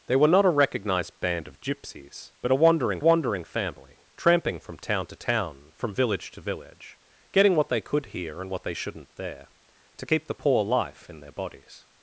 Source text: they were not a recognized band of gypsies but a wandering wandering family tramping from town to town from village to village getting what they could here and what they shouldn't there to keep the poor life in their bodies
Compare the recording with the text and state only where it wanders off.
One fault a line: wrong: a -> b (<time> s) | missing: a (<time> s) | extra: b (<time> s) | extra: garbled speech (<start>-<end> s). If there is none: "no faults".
no faults